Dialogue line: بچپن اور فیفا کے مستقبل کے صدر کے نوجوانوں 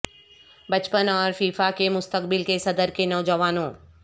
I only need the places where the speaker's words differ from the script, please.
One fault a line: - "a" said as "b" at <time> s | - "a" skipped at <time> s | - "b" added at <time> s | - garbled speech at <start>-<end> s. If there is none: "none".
none